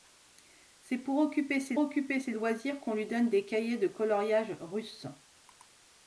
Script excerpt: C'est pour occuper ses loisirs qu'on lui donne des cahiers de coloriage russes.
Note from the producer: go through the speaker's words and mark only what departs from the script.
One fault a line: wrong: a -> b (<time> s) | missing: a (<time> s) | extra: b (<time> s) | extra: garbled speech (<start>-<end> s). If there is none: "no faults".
extra: occuper ses (1.8 s)